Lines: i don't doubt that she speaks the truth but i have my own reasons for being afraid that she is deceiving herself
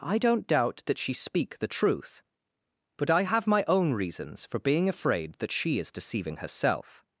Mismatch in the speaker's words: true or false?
true